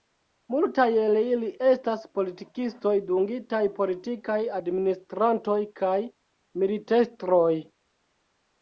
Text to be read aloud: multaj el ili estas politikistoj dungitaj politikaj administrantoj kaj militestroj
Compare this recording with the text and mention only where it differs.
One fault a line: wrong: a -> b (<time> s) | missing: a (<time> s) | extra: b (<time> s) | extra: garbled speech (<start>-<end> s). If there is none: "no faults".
no faults